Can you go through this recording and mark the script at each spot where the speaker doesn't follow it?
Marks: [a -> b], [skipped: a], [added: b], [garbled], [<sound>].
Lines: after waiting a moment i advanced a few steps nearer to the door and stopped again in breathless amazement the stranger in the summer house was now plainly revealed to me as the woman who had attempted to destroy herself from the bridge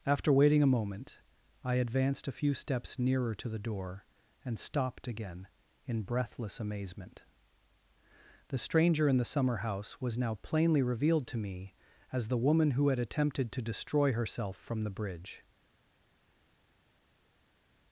after waiting a moment i advanced a few steps nearer to the door and stopped again in breathless amazement the stranger in the summer house was now plainly revealed to me as the woman who had attempted to destroy herself from the bridge